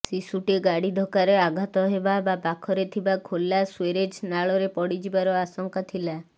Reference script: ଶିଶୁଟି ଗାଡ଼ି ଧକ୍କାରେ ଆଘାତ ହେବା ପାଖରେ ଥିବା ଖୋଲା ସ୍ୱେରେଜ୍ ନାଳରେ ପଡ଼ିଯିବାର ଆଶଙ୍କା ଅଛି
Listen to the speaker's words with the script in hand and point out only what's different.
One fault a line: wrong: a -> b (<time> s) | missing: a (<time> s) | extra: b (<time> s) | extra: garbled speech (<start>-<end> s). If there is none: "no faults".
extra: ବା (2.2 s)
wrong: ଅଛି -> ଥିଲା (5.9 s)